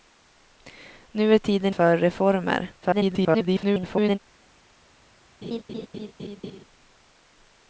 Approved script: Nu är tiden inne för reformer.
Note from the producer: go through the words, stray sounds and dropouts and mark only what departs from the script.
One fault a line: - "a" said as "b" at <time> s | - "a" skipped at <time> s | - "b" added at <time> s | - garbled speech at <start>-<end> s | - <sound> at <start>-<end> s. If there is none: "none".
- "inne" skipped at 1.8 s
- garbled speech at 2.8-4.2 s
- laugh at 5.4-6.6 s